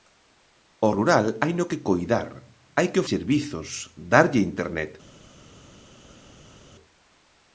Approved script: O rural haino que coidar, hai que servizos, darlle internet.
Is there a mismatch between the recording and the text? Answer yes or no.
no